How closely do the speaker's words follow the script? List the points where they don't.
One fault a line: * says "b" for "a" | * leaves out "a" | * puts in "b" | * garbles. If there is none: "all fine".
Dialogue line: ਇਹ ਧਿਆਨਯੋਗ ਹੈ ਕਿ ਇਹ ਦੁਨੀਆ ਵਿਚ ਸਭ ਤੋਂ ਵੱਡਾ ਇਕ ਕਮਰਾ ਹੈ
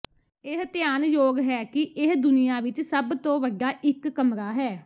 all fine